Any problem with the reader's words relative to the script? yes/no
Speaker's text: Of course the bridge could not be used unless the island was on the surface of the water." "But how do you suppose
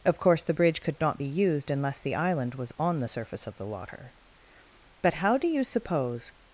no